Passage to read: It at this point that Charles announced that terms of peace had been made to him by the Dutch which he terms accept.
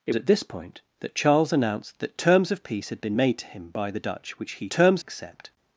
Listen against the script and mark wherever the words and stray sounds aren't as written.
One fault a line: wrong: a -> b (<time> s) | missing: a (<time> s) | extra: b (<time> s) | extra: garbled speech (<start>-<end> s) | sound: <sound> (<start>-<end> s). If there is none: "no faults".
no faults